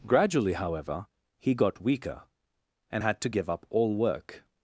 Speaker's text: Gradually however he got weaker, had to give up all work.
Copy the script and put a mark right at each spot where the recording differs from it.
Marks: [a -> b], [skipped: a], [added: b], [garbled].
Gradually however he got weaker, [added: and] had to give up all work.